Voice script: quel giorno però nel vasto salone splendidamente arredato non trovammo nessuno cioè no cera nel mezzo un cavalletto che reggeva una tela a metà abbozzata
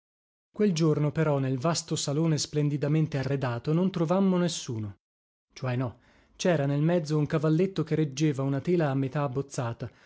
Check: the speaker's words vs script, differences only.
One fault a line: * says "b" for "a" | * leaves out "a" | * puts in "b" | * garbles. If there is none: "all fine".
all fine